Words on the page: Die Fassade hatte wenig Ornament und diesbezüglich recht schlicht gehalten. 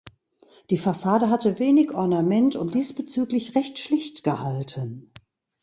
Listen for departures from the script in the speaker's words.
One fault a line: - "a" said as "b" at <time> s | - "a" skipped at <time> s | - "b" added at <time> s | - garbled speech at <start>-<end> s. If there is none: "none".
none